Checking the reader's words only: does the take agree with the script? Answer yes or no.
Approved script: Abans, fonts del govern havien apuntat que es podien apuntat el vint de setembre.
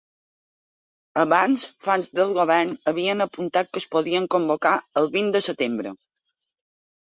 no